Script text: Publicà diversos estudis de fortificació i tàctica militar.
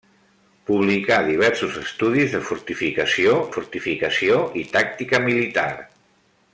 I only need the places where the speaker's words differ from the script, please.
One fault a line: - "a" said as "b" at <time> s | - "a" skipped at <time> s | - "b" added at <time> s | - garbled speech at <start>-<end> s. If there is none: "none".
- "fortificació" added at 3.5 s